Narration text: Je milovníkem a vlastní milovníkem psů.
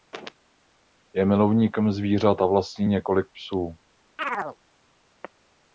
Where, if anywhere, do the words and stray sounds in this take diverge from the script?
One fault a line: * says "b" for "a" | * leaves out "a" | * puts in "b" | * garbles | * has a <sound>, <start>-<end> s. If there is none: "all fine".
* puts in "zvířat"
* says "několik" for "milovníkem"
* has a chirp, 4.2-4.6 s